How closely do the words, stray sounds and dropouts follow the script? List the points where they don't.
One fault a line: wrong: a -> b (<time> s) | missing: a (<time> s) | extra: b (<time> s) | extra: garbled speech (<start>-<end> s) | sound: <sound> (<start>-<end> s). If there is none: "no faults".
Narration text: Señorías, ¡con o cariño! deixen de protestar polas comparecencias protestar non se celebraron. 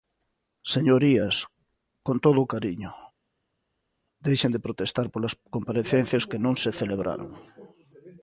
extra: todo (2.2 s)
wrong: protestar -> que (6.3 s)